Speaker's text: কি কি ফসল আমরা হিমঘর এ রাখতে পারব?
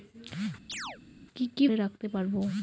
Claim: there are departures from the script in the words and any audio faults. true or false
true